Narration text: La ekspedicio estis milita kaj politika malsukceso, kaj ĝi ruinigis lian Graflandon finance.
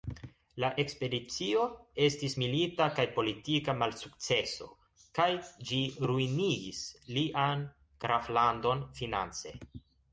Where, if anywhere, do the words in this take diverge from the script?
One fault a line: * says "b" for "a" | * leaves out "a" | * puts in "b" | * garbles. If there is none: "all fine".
all fine